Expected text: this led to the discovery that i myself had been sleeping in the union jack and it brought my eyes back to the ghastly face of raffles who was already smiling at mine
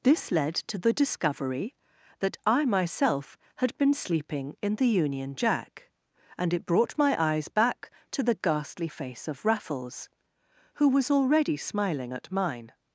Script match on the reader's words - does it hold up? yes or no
yes